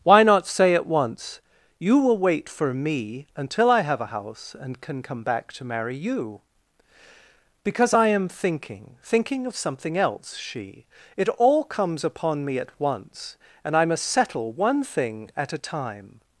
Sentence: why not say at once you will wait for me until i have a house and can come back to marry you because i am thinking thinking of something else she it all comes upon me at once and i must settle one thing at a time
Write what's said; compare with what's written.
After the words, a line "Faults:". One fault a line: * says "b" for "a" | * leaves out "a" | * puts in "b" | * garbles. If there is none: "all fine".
why not say at once you will wait for me until i have a house and can come back to marry you because i am thinking thinking of something else she it all comes upon me at once and i must settle one thing at a time
Faults:
all fine